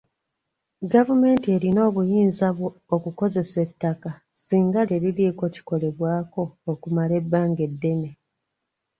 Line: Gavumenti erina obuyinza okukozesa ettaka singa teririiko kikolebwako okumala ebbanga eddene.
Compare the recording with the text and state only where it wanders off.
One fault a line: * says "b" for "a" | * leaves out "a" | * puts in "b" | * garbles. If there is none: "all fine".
all fine